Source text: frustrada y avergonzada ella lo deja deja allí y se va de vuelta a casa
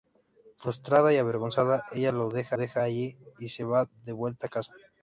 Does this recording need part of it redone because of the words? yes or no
no